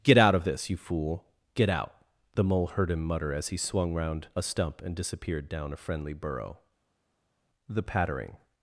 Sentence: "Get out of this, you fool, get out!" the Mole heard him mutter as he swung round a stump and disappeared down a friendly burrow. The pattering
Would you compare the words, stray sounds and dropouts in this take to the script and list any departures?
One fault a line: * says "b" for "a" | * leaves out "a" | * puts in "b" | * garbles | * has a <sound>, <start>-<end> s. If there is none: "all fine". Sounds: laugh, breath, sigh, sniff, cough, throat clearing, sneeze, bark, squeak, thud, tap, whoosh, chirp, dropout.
all fine